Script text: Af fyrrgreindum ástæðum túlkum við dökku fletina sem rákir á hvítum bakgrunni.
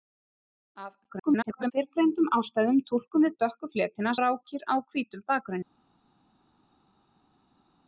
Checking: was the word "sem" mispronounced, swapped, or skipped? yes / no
yes